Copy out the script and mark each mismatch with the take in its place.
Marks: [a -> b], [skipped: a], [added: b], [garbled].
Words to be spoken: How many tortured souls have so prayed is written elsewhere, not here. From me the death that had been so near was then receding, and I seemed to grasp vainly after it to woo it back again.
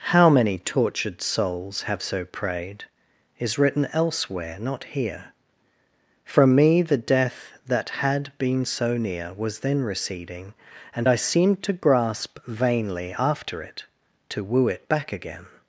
How many tortured souls have so prayed is written elsewhere, not here. From me the death that had been so near was then receding, and I seemed to grasp vainly after it to woo it back again.